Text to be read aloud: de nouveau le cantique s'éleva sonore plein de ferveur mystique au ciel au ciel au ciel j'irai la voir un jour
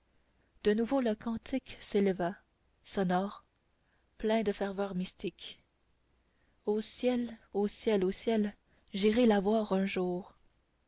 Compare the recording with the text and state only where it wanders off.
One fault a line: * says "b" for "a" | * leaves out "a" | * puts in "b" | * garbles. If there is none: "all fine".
all fine